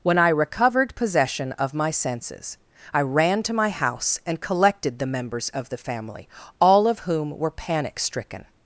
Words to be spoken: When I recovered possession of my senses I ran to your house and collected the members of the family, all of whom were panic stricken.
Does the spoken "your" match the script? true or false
false